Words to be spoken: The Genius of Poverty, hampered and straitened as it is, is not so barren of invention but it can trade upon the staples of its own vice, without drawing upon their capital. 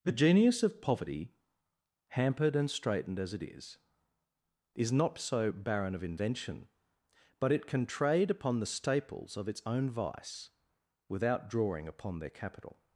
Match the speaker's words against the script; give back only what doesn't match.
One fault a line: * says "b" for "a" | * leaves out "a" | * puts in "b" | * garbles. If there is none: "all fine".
all fine